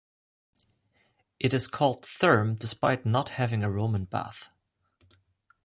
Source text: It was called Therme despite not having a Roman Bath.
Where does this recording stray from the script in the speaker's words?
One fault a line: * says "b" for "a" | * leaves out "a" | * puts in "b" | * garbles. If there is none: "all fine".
* says "is" for "was"